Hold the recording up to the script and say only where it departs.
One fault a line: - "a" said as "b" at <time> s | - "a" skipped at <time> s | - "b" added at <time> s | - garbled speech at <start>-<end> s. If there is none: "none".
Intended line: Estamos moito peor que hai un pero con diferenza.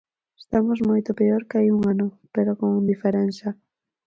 - "ano" added at 1.9 s